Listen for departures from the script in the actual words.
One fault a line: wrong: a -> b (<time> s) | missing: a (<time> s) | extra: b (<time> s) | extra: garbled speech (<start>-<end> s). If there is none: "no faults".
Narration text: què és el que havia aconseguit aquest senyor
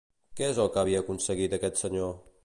no faults